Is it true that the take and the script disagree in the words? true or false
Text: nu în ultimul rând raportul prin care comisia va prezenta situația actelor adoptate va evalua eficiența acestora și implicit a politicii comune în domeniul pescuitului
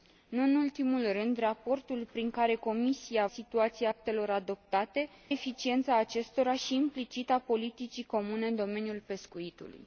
true